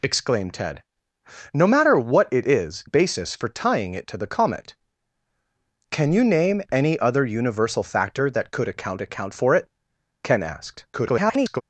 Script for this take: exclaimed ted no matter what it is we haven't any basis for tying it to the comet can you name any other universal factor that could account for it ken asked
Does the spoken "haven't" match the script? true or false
false